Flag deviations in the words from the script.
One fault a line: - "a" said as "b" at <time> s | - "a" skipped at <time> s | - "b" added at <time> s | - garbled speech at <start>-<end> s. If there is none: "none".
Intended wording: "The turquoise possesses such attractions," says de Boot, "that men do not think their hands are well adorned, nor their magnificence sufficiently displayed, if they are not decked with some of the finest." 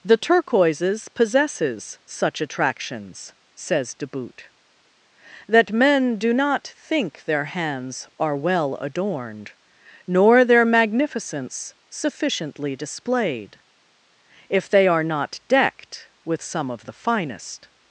- "turquoise" said as "turquoises" at 0.2 s